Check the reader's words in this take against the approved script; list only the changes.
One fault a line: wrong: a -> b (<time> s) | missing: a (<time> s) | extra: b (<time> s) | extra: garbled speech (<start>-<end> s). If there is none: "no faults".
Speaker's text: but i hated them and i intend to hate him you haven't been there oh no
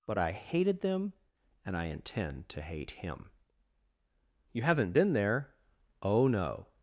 no faults